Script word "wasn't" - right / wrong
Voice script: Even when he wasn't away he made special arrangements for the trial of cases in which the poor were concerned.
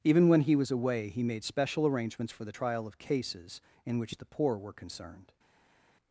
wrong